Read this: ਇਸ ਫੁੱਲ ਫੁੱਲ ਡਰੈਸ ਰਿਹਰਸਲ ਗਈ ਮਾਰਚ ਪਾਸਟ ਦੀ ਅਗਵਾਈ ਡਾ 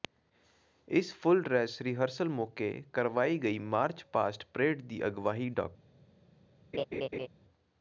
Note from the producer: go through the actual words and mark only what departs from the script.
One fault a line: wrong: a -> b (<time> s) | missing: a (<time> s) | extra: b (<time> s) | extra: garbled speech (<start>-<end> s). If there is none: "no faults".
missing: ਫੁੱਲ (1.4 s)
extra: ਮੌਕੇ ਕਰਵਾਈ (2.3 s)
extra: ਪਰੇਡ (4.5 s)